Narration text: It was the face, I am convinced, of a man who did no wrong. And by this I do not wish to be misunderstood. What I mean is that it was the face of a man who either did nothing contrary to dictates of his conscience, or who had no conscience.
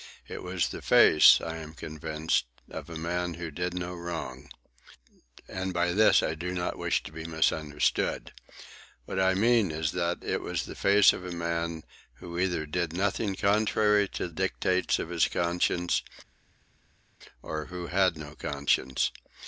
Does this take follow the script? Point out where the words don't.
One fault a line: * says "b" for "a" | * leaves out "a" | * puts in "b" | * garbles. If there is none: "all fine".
all fine